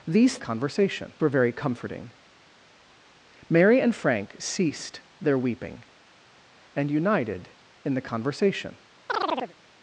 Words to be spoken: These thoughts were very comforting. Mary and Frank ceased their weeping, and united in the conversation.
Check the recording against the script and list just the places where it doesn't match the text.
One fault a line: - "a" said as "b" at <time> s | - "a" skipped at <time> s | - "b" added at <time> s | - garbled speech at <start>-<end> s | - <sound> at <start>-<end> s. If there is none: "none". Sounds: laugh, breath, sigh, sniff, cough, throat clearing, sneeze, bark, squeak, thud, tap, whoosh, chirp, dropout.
- "thoughts" said as "conversation" at 0.4 s
- chirp at 9.1-9.5 s